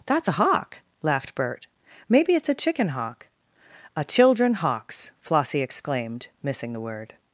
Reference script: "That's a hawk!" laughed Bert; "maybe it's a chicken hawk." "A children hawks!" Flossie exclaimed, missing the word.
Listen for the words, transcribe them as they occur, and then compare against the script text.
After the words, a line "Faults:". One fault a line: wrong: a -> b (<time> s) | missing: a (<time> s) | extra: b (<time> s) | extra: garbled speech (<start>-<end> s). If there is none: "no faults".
"That's a hawk!" laughed Bert; "maybe it's a chicken hawk." "A children hawks!" Flossie exclaimed, missing the word.
Faults:
no faults